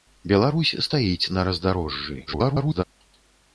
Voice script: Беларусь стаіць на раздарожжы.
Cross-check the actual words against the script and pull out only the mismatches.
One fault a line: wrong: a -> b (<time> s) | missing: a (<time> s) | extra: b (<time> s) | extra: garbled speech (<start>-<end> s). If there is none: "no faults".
extra: garbled speech (2.3-2.8 s)